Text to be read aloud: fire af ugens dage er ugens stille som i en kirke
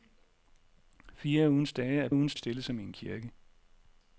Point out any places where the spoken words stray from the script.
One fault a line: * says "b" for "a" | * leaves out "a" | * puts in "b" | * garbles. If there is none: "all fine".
all fine